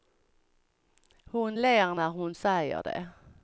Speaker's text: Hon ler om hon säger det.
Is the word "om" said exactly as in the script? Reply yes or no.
no